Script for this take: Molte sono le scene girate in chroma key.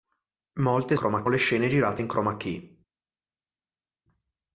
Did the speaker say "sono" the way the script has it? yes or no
no